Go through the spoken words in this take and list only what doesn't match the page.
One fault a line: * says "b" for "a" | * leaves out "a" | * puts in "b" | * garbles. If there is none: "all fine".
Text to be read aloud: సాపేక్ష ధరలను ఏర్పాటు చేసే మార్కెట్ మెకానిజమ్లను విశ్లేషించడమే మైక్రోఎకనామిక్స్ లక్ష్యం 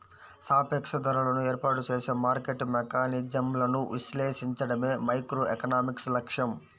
all fine